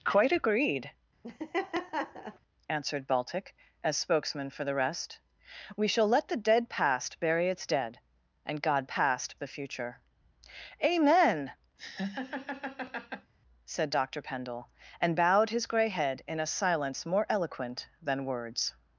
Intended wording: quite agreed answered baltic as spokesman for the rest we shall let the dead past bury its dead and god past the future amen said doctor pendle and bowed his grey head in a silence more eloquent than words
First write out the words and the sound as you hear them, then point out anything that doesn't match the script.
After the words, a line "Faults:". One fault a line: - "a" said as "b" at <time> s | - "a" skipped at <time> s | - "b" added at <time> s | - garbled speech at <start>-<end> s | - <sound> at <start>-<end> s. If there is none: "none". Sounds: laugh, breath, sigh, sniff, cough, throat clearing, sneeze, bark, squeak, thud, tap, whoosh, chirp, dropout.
quite agreed answered baltic as spokesman for the rest we shall let the dead past bury its dead and god past the future amen said doctor pendle and bowed his grey head in a silence more eloquent than words
Faults:
- laugh at 1.2-2.4 s
- laugh at 11.8-13.3 s